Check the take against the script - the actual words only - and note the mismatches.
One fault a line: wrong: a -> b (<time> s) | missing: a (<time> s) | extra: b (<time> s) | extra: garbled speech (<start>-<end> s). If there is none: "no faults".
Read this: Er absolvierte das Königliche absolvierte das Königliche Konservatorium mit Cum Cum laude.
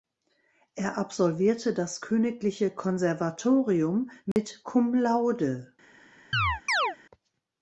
missing: absolvierte das Königliche (2.7 s)
missing: Cum (4.9 s)